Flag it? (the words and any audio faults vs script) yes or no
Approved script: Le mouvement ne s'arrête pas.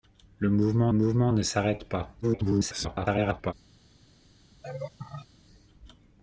yes